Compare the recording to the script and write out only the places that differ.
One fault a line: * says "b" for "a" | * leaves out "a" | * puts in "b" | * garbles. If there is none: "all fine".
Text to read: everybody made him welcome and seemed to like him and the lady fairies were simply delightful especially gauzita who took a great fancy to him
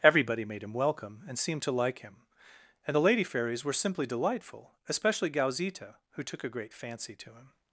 all fine